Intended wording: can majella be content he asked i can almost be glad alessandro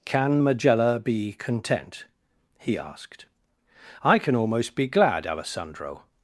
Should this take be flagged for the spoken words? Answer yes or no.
no